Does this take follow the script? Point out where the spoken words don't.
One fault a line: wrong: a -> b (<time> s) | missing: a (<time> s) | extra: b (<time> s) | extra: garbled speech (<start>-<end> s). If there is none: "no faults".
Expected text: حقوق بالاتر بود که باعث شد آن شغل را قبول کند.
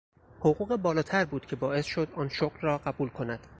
no faults